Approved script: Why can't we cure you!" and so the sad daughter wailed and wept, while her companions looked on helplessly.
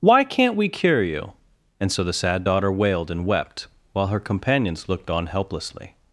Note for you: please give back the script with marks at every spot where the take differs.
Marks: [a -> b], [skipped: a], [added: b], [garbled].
Why can't we cure you!" and so the sad daughter wailed and wept, while her companions looked on helplessly.